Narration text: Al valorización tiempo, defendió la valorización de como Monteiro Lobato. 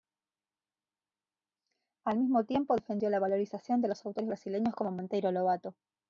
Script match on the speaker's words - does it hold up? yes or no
no